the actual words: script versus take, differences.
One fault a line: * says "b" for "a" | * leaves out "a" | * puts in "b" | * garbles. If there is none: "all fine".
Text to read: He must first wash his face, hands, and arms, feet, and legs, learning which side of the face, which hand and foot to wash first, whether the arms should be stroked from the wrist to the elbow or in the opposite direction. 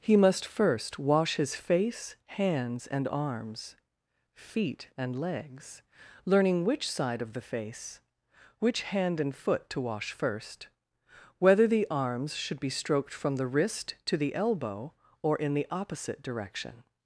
all fine